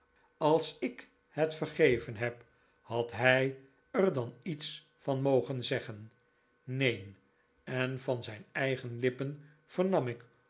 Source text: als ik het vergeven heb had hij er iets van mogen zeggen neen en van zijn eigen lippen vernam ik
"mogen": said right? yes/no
yes